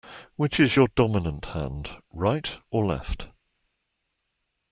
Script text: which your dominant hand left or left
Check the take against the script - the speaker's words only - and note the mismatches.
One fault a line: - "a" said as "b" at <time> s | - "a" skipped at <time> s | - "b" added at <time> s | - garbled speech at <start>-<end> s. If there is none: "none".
- "is" added at 0.6 s
- "left" said as "right" at 2.1 s